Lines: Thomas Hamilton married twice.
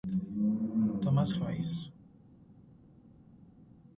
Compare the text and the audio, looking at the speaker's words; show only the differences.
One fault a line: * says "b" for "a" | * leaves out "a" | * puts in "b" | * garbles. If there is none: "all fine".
* leaves out "Hamilton married"